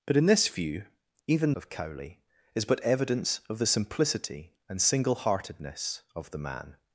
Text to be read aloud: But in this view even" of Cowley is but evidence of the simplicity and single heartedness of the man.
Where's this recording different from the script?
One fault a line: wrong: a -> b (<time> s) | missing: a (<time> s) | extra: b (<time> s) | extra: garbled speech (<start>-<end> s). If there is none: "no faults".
no faults